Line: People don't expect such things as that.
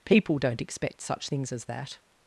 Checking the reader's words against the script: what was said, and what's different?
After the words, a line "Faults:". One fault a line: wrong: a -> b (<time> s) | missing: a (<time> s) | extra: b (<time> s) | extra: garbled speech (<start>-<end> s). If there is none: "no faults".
People don't expect such things as that.
Faults:
no faults